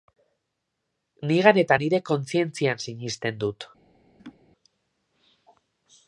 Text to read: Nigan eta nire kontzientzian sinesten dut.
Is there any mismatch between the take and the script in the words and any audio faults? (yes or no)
yes